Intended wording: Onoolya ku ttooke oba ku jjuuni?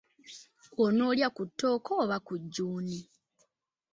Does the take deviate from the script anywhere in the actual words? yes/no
no